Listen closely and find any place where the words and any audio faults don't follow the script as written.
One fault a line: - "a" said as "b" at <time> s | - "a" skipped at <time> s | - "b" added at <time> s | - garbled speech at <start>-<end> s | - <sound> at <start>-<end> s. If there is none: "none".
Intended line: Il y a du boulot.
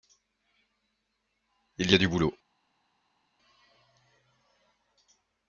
none